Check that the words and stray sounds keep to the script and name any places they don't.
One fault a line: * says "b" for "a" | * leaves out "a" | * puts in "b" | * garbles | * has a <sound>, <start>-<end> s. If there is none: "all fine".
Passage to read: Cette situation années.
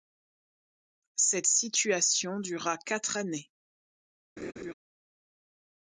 * puts in "dura quatre"
* has a laugh, 4.4-4.7 s